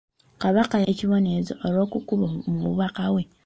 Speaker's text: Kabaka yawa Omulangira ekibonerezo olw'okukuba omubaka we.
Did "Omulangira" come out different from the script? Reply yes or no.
yes